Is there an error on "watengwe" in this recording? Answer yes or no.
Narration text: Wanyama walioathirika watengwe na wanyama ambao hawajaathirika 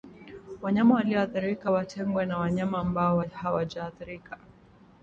no